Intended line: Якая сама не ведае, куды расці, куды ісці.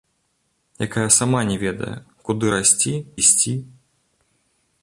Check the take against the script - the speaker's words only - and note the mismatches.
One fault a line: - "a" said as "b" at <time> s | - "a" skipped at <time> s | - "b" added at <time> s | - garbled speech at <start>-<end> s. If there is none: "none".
- "куды" skipped at 2.9 s